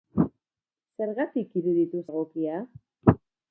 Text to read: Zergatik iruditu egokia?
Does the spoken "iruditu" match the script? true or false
true